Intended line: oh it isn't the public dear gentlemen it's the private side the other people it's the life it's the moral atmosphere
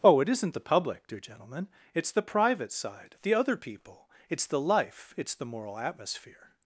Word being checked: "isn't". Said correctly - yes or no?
yes